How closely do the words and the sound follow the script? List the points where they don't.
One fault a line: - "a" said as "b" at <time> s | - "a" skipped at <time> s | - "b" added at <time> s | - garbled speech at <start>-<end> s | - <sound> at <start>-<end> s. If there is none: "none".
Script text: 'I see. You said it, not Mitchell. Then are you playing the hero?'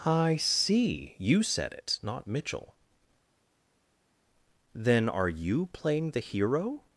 none